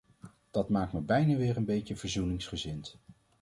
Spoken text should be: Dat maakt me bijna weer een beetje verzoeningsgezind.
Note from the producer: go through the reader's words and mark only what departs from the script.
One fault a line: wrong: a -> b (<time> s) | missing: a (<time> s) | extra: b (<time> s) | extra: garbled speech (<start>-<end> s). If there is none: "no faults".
no faults